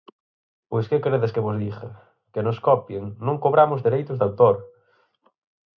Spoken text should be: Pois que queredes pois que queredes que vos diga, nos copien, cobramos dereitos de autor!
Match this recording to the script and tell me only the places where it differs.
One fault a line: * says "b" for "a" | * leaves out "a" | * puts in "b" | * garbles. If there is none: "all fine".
* leaves out "pois"
* leaves out "queredes que"
* puts in "que"
* puts in "non"